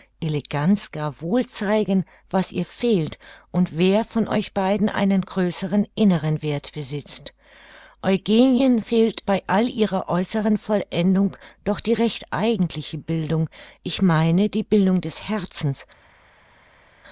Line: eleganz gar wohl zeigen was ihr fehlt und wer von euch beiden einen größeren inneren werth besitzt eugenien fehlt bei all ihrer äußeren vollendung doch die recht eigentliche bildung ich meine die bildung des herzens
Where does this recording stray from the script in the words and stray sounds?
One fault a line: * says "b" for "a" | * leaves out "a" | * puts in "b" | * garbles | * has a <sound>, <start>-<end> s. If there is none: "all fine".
all fine